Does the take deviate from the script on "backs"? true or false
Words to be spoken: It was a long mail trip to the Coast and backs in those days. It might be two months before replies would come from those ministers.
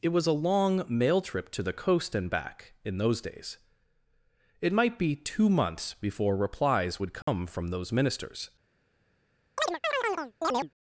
true